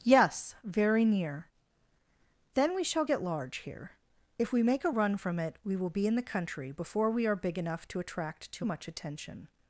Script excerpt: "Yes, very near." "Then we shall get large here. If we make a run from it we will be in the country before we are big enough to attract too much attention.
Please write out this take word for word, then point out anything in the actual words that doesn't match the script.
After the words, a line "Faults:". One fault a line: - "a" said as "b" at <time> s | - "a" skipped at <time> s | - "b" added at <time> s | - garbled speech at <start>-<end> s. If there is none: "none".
"Yes, very near." "Then we shall get large here. If we make a run from it we will be in the country before we are big enough to attract too much attention.
Faults:
none